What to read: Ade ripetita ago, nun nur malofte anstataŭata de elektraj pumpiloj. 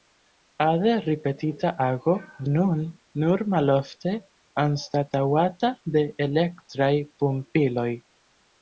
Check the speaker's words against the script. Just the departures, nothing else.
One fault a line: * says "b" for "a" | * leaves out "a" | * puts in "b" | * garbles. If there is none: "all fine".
all fine